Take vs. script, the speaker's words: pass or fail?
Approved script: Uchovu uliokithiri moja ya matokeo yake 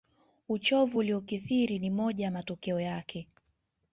fail